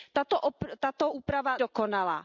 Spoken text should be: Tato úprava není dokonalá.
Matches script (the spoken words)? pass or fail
fail